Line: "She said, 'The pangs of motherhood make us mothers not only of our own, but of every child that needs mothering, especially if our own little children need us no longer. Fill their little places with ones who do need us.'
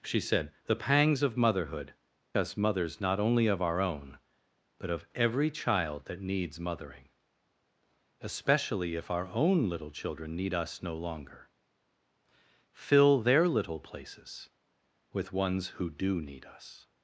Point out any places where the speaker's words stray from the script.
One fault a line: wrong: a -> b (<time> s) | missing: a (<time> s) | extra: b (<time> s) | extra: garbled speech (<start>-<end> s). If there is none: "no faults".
missing: make (1.9 s)